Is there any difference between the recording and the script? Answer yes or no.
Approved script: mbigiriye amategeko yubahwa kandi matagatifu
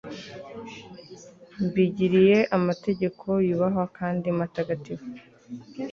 no